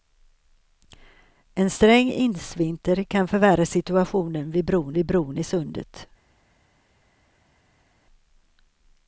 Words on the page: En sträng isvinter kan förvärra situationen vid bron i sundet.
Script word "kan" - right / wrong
right